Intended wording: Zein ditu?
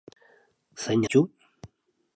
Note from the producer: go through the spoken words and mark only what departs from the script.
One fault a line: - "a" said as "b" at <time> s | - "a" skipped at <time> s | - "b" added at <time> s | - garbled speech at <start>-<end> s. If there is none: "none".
none